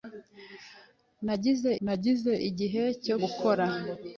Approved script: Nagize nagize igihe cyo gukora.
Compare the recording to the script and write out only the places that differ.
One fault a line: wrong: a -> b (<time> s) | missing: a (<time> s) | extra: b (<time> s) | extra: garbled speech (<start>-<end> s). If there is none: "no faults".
no faults